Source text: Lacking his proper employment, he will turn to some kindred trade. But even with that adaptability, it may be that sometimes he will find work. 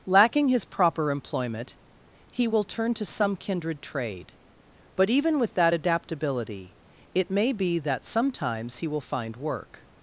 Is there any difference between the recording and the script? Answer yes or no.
no